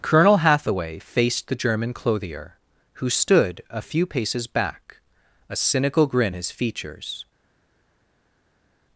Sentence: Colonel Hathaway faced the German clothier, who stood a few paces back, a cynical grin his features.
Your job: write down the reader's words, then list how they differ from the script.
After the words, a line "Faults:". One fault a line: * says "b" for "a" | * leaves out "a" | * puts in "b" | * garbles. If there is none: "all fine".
Colonel Hathaway faced the German clothier, who stood a few paces back, a cynical grin his features.
Faults:
all fine